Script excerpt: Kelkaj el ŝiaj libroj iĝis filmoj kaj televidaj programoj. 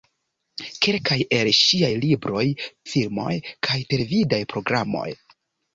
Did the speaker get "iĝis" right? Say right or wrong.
wrong